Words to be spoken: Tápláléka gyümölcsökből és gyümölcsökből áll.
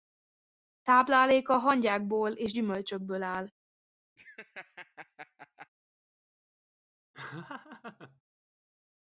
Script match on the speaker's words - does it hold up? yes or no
no